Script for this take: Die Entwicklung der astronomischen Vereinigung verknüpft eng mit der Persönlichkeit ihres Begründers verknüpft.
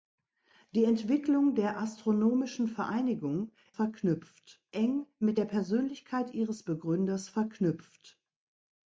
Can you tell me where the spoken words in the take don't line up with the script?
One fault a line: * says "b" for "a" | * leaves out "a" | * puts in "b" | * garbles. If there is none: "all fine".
all fine